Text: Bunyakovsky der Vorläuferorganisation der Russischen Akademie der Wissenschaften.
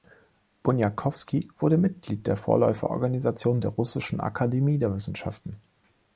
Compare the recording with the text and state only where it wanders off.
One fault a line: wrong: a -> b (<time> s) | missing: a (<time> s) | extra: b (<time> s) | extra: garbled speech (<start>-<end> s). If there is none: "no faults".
extra: wurde Mitglied (1.6 s)